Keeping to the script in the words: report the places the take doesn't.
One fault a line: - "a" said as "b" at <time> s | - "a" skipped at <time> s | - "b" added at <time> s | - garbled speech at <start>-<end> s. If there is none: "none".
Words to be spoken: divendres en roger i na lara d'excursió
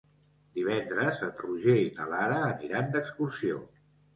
- "aniran" added at 2.5 s